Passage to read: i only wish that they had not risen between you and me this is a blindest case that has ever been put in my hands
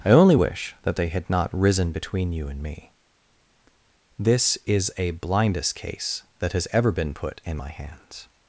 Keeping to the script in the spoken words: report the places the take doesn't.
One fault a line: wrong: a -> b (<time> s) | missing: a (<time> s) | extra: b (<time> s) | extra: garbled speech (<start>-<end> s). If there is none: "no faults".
no faults